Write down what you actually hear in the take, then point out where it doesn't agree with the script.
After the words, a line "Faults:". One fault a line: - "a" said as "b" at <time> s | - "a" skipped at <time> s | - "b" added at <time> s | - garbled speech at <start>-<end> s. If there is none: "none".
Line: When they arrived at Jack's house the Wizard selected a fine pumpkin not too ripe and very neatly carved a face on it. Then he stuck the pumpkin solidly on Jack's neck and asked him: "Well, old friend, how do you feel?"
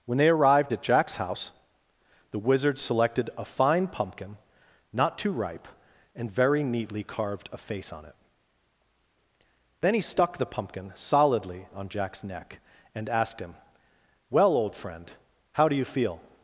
When they arrived at Jack's house the Wizard selected a fine pumpkin not too ripe and very neatly carved a face on it. Then he stuck the pumpkin solidly on Jack's neck and asked him: "Well, old friend, how do you feel?"
Faults:
none